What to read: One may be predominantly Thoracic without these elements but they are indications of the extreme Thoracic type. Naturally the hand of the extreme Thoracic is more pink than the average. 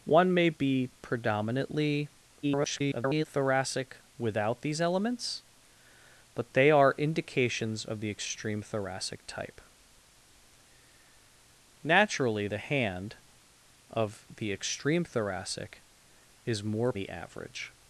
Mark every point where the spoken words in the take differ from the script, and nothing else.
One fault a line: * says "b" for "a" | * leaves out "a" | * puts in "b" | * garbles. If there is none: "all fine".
* garbles
* leaves out "pink than"